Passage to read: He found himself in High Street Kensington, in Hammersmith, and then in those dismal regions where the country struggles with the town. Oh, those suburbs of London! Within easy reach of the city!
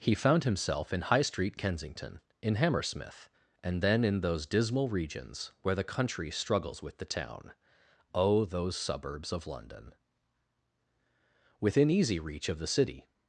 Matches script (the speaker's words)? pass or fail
pass